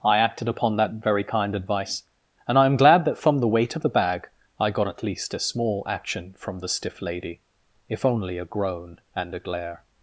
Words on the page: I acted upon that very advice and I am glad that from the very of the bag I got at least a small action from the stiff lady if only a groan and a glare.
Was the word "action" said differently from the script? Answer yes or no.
no